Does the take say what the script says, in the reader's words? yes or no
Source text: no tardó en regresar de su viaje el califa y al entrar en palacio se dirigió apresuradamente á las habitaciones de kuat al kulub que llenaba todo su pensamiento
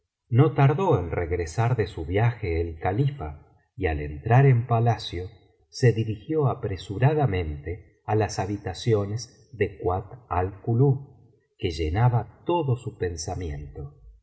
yes